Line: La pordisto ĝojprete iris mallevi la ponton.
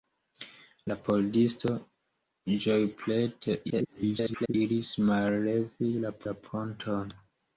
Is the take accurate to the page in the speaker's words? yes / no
no